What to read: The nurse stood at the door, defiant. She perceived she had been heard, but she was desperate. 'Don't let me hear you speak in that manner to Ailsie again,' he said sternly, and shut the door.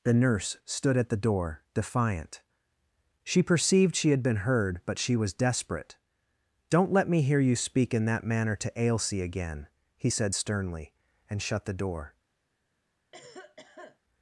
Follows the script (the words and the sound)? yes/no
no